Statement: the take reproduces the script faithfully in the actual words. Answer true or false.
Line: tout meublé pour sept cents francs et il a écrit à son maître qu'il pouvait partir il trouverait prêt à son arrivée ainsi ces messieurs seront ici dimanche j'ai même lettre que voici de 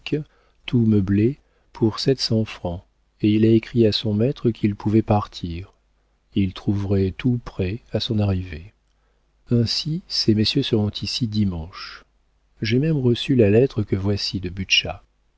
false